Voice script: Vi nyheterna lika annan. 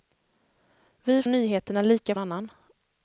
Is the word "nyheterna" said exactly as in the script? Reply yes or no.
yes